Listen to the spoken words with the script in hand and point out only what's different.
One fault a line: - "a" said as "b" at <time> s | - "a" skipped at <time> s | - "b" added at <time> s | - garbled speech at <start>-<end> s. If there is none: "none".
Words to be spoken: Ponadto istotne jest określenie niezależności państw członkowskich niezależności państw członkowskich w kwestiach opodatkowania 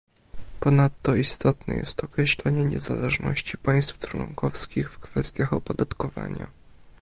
- "niezależności państw członkowskich" skipped at 4.9 s